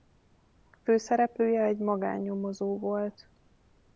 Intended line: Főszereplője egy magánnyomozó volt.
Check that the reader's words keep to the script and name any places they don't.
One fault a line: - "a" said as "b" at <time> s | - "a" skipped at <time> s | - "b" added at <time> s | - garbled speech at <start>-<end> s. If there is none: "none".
none